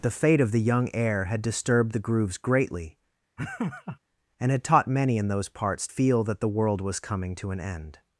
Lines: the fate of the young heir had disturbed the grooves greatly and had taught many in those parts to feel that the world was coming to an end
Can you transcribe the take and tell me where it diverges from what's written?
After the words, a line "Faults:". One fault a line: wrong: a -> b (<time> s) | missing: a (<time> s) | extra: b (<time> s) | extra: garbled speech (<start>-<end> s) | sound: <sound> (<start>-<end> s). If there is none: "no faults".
the fate of the young heir had disturbed the grooves greatly and had taught many in those parts feel that the world was coming to an end
Faults:
sound: laugh (3.4-4.0 s)
missing: to (5.9 s)